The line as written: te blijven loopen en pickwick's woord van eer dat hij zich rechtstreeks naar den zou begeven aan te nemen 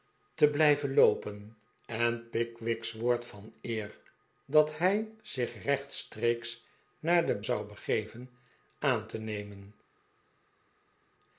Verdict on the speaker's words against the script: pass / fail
pass